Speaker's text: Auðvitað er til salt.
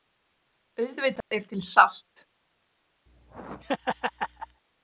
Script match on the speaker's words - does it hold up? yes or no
yes